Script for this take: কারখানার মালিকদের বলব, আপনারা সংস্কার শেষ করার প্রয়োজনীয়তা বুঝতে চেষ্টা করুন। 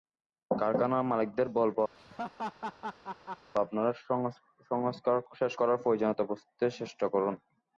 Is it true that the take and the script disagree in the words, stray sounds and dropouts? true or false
true